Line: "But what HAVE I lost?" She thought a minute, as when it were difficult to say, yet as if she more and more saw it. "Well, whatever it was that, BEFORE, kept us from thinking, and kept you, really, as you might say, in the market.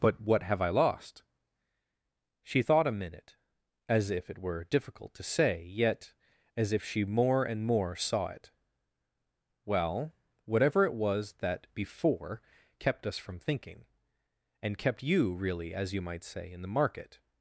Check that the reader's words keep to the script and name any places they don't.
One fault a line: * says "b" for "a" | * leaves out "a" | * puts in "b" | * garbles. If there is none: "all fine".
* says "if" for "when"